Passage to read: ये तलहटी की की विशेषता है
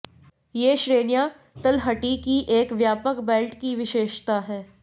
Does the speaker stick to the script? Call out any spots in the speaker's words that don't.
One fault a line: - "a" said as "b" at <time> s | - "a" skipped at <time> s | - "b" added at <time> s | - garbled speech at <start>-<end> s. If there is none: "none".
- "श्रेणियां" added at 0.8 s
- "एक व्यापक बेल्ट" added at 2.6 s